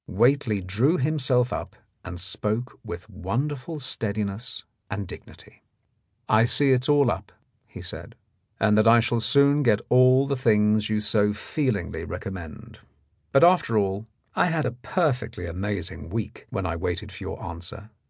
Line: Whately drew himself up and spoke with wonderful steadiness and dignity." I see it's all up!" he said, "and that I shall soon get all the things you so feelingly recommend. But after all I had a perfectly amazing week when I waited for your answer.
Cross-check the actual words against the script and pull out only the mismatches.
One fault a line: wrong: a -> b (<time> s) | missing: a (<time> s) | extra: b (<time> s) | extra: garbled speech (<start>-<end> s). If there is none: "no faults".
no faults